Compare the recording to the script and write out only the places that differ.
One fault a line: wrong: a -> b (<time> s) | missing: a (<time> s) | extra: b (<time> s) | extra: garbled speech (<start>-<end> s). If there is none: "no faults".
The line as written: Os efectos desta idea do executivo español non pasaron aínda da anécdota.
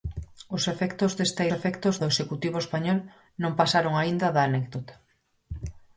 wrong: idea -> efectos (1.6 s)